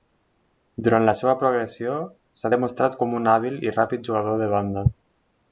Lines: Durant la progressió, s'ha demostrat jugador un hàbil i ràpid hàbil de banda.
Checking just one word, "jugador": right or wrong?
wrong